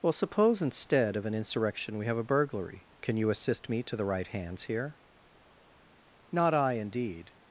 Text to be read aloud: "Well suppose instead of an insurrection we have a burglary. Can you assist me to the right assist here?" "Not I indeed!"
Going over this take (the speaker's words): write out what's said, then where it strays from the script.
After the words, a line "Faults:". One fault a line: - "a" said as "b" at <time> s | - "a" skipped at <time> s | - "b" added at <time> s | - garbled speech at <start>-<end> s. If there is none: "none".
"Well suppose instead of an insurrection we have a burglary. Can you assist me to the right hands here?" "Not I indeed!"
Faults:
- "assist" said as "hands" at 4.2 s